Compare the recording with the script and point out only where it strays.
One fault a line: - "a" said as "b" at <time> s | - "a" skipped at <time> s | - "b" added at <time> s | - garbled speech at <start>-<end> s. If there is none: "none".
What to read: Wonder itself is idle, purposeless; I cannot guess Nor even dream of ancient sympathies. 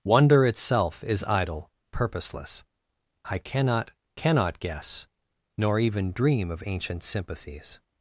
- "cannot" added at 4.2 s